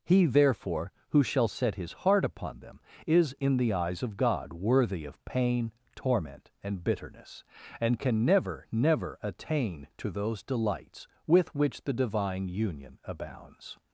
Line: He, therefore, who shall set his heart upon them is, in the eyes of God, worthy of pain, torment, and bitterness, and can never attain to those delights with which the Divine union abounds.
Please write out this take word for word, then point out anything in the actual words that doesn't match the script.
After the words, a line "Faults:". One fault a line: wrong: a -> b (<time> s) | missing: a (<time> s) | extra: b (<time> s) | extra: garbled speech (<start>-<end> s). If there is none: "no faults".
He, therefore, who shall set his heart upon them is, in the eyes of God, worthy of pain, torment, and bitterness, and can never never attain to those delights with which the Divine union abounds.
Faults:
extra: never (8.7 s)